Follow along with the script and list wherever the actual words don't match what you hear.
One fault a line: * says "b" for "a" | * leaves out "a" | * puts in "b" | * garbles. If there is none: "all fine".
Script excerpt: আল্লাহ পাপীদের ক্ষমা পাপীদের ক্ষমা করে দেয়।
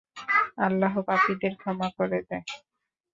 * leaves out "পাপীদের ক্ষমা"